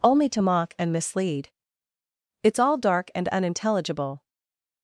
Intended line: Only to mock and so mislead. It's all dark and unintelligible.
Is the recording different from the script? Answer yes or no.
yes